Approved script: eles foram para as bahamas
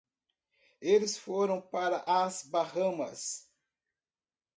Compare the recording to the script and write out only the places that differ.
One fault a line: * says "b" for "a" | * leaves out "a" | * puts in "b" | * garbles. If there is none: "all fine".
all fine